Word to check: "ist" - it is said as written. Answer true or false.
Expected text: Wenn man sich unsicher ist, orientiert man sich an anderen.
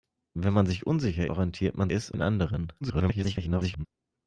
false